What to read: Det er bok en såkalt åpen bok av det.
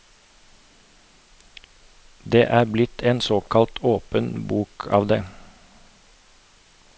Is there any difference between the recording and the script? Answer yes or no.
yes